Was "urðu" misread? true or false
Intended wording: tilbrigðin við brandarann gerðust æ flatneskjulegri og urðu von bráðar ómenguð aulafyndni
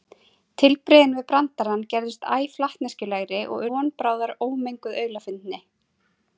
true